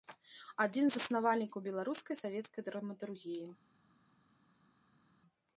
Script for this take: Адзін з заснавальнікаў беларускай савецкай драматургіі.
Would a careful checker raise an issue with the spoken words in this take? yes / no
no